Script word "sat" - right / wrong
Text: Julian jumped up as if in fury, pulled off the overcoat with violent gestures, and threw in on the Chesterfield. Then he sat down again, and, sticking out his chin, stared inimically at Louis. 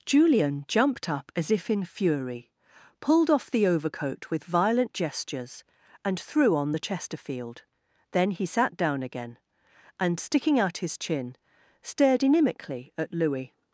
right